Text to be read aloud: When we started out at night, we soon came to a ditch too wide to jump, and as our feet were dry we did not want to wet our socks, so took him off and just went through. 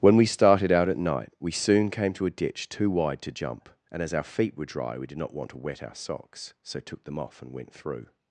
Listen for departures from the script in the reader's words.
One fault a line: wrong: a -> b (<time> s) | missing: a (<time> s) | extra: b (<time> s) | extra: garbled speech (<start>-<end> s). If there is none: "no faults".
wrong: him -> them (7.0 s)
missing: just (7.5 s)